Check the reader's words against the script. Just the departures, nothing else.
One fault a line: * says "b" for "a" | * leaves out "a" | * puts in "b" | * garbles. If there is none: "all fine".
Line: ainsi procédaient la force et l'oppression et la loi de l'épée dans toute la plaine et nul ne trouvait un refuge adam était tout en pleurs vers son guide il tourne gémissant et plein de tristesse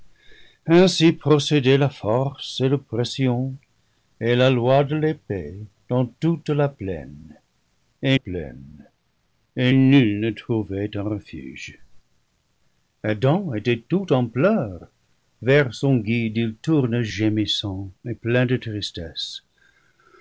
* puts in "plaine et"